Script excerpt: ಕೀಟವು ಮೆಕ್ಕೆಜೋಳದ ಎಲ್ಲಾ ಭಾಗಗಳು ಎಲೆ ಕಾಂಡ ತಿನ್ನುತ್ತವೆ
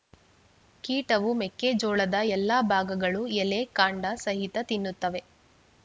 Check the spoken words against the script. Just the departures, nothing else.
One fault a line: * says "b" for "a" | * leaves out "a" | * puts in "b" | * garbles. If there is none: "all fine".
* puts in "ಸಹಿತ"